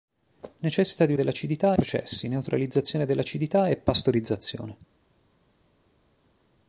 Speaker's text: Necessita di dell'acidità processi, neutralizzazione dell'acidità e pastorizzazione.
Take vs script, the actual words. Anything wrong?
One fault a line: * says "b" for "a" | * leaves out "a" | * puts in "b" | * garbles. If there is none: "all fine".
all fine